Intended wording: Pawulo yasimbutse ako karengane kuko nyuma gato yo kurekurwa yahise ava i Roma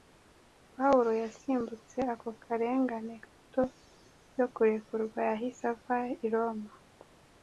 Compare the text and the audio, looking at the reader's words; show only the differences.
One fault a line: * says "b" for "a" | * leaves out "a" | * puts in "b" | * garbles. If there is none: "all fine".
* leaves out "kuko nyuma"